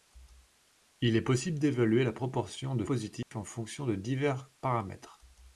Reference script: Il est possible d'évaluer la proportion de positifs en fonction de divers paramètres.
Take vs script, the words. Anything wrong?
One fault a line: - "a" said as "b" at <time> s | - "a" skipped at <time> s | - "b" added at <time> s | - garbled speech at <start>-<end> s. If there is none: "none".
none